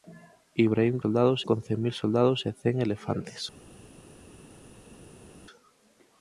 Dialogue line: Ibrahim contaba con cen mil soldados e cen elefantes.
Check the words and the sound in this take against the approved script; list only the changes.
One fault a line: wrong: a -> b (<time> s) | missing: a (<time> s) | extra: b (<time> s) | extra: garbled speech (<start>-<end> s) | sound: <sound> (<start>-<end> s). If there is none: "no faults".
wrong: contaba -> soldados (1.0 s)